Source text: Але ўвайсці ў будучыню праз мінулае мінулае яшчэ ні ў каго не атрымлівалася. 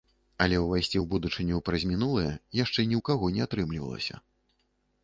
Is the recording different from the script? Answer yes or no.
yes